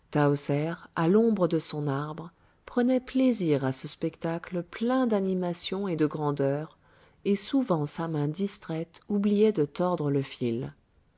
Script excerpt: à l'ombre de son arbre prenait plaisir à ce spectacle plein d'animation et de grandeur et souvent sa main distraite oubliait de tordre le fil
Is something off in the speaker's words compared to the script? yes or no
no